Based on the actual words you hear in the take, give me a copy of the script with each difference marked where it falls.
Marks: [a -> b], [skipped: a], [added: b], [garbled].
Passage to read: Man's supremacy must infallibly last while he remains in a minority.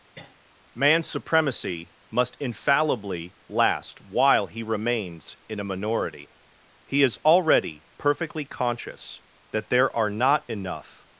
Man's supremacy must infallibly last while he remains in a minority. [added: He is already perfectly conscious that there are not enough]